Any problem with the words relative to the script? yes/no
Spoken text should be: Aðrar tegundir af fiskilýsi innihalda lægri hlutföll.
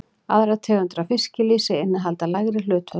no